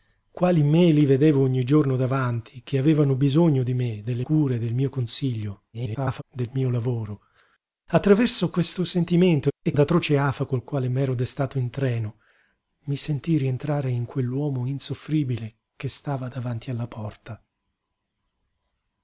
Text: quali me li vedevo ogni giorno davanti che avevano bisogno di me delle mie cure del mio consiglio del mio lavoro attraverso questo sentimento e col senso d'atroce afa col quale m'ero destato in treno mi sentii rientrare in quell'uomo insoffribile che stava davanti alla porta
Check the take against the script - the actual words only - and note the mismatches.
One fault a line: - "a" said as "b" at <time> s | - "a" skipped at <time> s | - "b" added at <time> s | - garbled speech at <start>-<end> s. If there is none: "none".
- "mie" skipped at 4.2 s
- garbled speech at 5.7-6.2 s
- "col senso" skipped at 9.7 s